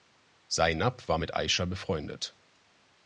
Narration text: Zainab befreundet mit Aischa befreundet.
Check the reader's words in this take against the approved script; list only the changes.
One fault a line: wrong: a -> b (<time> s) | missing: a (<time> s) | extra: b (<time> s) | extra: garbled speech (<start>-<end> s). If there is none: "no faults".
wrong: befreundet -> war (1.1 s)